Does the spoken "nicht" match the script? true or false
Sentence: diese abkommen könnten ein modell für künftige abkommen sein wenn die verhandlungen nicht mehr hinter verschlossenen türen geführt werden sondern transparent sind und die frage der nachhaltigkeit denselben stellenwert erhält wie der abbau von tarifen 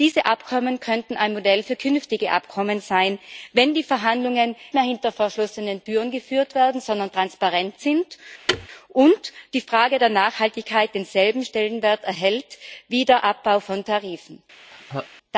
false